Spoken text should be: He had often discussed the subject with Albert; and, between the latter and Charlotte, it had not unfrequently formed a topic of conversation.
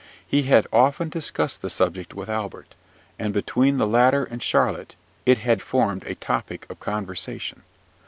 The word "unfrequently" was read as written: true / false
false